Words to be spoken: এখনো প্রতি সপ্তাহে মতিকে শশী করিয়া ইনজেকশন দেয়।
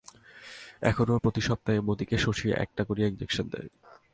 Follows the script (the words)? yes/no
no